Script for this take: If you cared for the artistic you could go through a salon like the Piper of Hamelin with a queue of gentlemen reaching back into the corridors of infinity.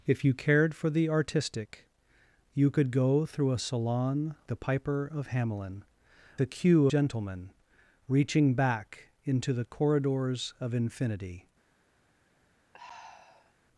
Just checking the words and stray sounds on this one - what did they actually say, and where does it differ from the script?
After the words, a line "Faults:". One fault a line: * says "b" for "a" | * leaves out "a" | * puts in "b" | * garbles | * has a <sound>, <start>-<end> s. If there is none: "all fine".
If you cared for the artistic you could go through a salon the Piper of Hamelin a queue gentlemen reaching back into the corridors of infinity.
Faults:
* leaves out "like"
* leaves out "with"
* leaves out "of"
* has a sigh, 12.7-13.5 s